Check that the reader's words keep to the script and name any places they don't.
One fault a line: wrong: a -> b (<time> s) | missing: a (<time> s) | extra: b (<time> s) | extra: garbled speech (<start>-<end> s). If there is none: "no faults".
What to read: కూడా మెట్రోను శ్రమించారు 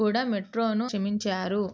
no faults